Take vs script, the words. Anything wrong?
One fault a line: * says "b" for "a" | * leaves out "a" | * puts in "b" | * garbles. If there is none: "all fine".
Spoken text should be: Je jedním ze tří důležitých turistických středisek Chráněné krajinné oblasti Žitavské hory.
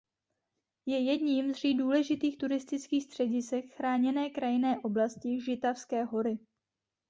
* leaves out "ze"